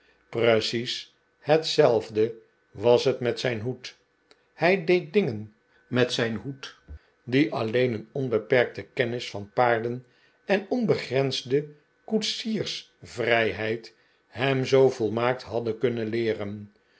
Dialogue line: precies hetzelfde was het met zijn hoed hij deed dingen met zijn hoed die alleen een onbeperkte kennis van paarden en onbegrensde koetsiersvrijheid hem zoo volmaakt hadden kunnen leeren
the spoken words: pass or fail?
pass